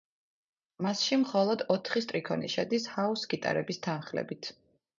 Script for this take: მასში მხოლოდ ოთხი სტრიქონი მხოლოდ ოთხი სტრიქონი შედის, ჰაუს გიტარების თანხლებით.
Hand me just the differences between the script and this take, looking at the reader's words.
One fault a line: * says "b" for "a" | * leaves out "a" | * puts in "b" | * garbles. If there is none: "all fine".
* leaves out "მხოლოდ ოთხი სტრიქონი"